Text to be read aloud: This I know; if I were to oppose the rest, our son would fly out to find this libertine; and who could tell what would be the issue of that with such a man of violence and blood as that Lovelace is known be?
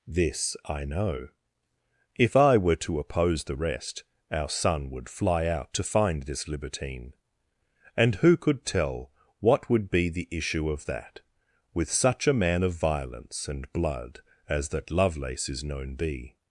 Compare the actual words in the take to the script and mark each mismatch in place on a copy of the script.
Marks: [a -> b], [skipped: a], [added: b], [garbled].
This I know; if I were to oppose the rest, our son would fly out to find this libertine; and who could tell what would be the issue of that with such a man of violence and blood as that Lovelace is known be?